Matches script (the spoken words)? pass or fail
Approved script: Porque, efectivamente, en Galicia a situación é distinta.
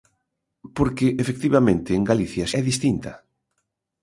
fail